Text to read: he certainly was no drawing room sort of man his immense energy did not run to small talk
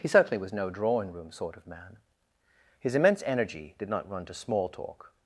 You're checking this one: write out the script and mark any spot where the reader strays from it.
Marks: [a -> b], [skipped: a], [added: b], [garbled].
he certainly was no drawing room sort of man his immense energy did not run to small talk